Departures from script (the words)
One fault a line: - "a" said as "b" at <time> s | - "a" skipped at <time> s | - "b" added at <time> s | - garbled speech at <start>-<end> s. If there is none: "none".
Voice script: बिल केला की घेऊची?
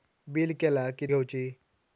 none